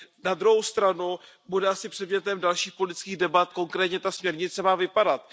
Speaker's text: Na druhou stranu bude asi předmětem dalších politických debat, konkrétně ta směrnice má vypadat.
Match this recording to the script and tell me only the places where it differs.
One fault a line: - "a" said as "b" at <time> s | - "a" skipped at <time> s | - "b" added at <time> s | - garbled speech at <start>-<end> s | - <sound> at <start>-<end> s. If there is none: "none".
none